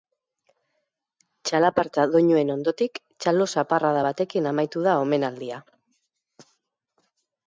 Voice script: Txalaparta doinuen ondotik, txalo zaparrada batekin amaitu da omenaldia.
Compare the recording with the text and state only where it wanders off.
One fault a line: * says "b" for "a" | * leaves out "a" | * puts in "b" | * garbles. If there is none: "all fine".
all fine